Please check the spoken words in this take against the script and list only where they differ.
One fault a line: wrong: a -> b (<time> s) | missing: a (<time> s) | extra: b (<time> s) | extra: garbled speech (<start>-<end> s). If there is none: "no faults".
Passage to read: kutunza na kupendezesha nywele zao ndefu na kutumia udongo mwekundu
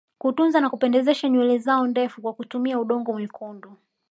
wrong: na -> kwa (2.2 s)